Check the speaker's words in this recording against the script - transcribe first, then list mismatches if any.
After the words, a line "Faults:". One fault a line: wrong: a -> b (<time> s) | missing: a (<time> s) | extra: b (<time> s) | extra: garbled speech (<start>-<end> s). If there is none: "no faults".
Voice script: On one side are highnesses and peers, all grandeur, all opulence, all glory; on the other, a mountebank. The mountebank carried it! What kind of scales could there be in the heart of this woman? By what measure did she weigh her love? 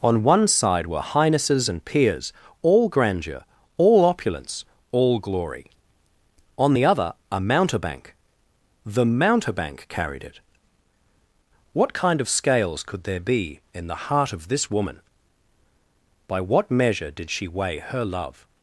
On one side were highnesses and peers, all grandeur, all opulence, all glory; on the other, a mountebank. The mountebank carried it! What kind of scales could there be in the heart of this woman? By what measure did she weigh her love?
Faults:
wrong: are -> were (0.9 s)